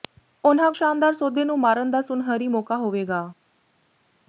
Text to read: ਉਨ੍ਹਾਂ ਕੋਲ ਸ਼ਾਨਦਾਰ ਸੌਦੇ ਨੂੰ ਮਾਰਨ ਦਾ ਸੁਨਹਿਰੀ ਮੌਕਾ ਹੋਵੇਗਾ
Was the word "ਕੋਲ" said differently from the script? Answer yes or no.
yes